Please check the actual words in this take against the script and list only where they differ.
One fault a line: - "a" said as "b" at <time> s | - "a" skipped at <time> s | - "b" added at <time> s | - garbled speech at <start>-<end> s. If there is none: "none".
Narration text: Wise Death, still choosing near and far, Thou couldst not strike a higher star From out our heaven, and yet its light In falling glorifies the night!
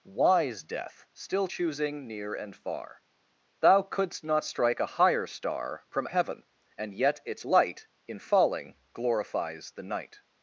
- "out our" skipped at 6.1 s